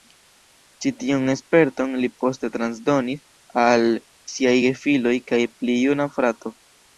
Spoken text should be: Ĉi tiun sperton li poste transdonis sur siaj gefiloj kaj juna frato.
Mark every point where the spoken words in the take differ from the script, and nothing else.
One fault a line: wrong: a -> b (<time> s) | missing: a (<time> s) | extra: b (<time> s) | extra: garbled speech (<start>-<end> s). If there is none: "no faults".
wrong: sur -> al (3.6 s)
extra: pli (5.6 s)